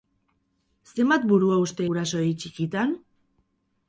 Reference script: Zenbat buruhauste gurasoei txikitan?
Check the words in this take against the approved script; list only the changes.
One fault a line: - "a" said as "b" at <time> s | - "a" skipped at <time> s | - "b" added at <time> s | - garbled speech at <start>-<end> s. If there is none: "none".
none